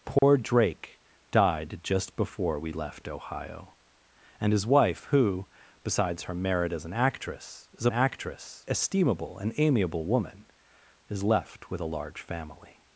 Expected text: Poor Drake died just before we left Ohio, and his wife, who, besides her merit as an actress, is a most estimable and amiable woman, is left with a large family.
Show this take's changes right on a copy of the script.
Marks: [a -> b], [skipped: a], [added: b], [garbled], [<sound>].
Poor [dropout] Drake died just before we left Ohio, and his wife, who, besides her merit as an actress, is a [most -> actress] estimable and amiable woman, is left with a large family.